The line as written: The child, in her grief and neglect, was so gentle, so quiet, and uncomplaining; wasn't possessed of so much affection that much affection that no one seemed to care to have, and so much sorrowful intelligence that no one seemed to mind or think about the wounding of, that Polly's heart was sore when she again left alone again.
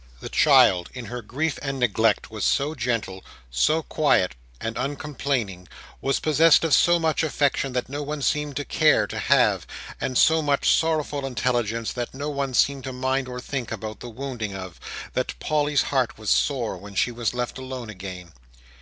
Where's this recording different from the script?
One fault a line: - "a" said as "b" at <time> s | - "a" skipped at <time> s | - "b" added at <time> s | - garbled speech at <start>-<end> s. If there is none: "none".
- "wasn't" said as "was" at 6.0 s
- "much affection that" skipped at 7.9 s
- "again" said as "was" at 17.1 s